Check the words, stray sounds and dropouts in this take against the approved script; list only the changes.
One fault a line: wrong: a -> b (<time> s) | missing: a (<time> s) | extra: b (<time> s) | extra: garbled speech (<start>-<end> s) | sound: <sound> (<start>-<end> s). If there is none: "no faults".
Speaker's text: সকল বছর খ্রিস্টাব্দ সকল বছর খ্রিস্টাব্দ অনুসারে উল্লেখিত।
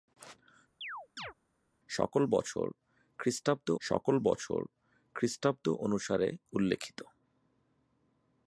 sound: chirp (0.8-1.3 s)